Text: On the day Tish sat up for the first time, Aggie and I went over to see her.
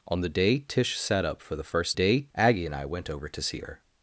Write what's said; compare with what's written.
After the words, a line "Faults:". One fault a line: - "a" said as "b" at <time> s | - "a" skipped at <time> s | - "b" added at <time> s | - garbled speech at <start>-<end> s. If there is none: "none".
On the day Tish sat up for the first day, Aggie and I went over to see her.
Faults:
- "time" said as "day" at 1.9 s